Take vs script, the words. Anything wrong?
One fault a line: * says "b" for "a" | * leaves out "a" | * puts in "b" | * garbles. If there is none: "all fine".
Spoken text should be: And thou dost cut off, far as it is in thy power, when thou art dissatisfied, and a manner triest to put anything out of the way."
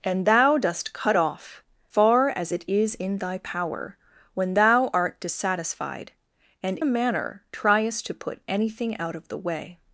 all fine